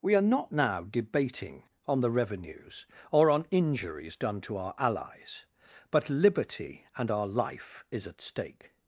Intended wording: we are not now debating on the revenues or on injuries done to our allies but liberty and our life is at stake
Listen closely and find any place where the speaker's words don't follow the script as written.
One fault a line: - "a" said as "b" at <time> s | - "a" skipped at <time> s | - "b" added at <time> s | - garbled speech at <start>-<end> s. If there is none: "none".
none